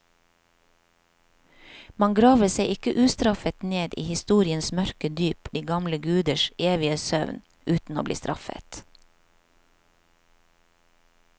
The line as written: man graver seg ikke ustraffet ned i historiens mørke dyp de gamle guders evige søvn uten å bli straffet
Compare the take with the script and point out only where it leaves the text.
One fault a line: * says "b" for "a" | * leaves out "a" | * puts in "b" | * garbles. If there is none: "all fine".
all fine